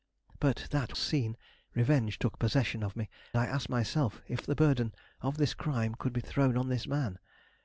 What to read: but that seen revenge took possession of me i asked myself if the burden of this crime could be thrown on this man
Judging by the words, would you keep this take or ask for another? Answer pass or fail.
pass